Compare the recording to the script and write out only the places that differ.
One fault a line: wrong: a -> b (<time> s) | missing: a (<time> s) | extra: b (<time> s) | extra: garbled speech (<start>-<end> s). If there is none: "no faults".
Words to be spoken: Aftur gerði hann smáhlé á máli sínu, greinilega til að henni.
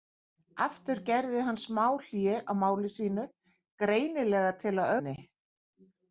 no faults